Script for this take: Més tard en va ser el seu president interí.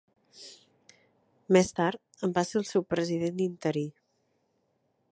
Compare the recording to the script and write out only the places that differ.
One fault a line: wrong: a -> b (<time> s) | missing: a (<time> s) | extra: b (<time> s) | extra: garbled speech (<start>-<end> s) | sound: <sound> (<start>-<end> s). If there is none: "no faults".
no faults